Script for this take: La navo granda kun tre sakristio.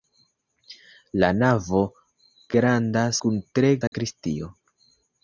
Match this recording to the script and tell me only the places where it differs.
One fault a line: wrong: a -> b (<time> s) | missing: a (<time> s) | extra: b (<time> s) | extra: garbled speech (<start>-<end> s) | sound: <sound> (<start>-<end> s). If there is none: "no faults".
sound: dropout (3.9-3.9 s)